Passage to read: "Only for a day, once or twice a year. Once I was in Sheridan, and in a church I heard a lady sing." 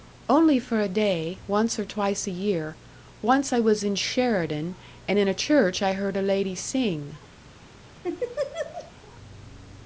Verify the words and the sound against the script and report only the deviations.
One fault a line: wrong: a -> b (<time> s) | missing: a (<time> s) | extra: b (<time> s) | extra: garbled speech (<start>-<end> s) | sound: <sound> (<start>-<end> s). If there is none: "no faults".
sound: laugh (8.0-8.9 s)